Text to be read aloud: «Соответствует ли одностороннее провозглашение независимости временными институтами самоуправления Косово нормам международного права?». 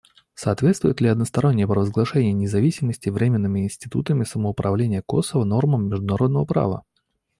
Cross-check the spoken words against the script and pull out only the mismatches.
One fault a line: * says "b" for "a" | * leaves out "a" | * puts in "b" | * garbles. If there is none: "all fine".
all fine